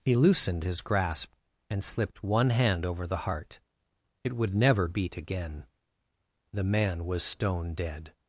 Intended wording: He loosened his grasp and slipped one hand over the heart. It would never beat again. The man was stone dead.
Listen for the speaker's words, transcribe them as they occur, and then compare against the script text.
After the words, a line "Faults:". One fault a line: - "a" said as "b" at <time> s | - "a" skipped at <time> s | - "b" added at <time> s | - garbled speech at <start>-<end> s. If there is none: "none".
He loosened his grasp and slipped one hand over the heart. It would never beat again. The man was stone dead.
Faults:
none